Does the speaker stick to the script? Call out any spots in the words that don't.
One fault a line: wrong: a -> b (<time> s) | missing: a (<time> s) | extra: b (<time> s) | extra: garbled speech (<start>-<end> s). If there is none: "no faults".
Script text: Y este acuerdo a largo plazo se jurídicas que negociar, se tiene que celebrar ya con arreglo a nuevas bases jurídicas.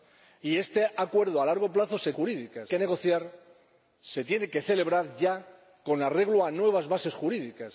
no faults